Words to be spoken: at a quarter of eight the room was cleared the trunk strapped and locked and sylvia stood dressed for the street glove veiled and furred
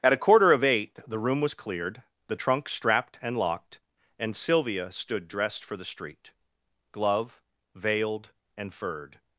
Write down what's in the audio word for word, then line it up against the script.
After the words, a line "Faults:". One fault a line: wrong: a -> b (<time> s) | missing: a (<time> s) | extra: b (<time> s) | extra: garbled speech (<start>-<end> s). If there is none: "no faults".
at a quarter of eight the room was cleared the trunk strapped and locked and sylvia stood dressed for the street glove veiled and furred
Faults:
no faults